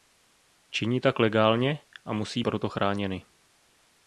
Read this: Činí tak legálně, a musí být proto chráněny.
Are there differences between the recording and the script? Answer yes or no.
yes